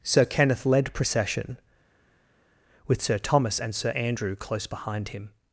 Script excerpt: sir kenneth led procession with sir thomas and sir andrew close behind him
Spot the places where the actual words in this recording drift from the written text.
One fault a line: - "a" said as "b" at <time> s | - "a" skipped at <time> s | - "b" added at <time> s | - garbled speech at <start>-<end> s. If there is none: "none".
none